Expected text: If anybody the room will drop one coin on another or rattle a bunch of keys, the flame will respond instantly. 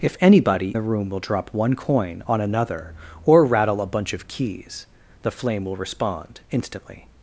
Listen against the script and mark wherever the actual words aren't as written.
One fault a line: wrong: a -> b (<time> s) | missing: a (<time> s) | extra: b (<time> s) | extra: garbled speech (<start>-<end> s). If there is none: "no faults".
no faults